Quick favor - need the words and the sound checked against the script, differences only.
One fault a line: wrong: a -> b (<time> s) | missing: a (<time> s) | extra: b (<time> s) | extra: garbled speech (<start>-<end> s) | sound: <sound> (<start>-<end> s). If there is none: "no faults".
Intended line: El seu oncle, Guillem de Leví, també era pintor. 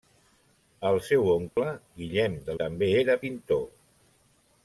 sound: dropout (1.5-1.6 s)
missing: Leví (2.6 s)